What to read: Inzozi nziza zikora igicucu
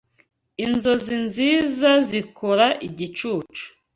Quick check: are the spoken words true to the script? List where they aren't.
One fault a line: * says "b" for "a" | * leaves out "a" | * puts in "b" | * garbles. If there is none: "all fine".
all fine